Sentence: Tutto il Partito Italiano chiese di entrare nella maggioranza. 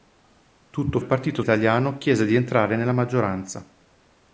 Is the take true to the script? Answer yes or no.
yes